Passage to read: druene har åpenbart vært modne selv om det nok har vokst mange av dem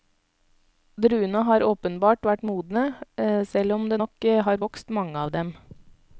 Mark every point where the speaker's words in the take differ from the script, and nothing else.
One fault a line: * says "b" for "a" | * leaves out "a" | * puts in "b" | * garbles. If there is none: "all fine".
all fine